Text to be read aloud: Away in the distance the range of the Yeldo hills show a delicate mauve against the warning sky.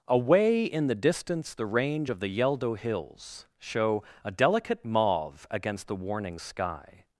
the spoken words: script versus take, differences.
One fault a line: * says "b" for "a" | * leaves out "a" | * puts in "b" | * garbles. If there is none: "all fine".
all fine